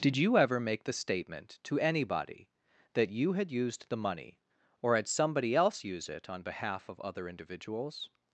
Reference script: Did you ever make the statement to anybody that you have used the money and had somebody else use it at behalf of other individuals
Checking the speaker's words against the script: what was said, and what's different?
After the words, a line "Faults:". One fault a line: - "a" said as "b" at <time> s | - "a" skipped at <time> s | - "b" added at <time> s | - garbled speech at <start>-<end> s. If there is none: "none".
Did you ever make the statement to anybody that you had used the money or had somebody else use it on behalf of other individuals
Faults:
- "have" said as "had" at 3.3 s
- "and" said as "or" at 4.8 s
- "at" said as "on" at 6.3 s